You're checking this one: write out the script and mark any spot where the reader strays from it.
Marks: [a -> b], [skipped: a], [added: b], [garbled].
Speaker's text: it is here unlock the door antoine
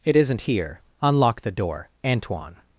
it [is -> isn't] here unlock the door antoine